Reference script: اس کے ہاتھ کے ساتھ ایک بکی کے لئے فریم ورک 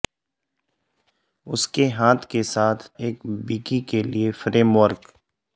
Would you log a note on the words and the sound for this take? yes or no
no